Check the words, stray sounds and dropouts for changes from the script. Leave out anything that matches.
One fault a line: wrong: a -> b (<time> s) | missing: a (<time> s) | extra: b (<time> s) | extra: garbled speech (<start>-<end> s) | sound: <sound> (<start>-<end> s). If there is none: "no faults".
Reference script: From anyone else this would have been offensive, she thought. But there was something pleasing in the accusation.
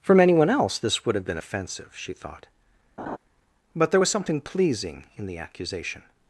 sound: laugh (3.0-3.2 s)